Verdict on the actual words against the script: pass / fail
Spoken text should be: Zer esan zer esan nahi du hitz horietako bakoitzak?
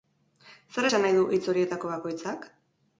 fail